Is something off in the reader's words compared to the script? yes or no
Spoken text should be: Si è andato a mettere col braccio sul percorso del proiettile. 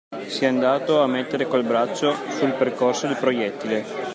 no